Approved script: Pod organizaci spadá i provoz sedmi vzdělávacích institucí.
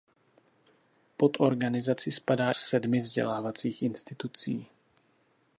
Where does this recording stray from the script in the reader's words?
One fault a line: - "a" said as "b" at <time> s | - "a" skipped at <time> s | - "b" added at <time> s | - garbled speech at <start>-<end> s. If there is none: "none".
- "i provoz" skipped at 2.5 s